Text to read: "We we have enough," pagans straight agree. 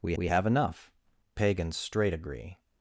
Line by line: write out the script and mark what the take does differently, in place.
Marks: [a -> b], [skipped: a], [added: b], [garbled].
"We we have enough," pagans straight agree.